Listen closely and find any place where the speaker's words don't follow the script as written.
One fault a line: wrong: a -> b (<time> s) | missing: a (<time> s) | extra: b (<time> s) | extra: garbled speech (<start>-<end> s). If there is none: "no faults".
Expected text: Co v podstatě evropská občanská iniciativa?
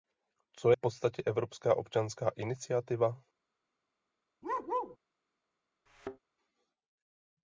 no faults